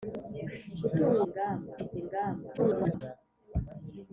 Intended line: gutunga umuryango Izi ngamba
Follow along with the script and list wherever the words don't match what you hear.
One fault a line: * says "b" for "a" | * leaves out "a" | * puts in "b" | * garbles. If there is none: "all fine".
* says "ngamba" for "umuryango"
* garbles